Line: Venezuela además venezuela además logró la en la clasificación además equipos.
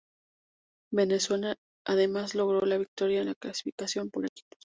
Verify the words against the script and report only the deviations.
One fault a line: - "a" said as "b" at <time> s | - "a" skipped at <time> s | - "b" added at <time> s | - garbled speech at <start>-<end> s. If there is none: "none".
- "venezuela además" skipped at 2.3 s
- "victoria" added at 2.8 s
- "además" said as "por" at 4.1 s